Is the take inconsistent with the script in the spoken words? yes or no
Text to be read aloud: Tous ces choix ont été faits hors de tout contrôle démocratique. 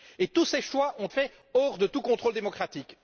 yes